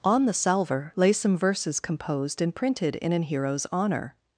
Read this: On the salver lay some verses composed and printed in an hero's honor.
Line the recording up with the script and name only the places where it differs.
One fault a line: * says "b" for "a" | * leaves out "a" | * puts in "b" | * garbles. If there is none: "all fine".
all fine